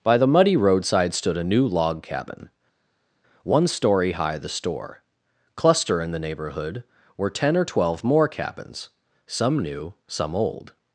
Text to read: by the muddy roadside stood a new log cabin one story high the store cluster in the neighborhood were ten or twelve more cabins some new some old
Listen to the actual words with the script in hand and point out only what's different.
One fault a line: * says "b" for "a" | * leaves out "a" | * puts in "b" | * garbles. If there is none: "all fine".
all fine